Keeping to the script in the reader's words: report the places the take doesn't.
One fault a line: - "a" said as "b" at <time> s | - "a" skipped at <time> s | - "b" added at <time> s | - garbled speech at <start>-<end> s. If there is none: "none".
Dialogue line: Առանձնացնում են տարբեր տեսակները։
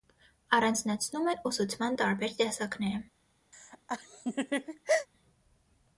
- "ուսուցման" added at 1.5 s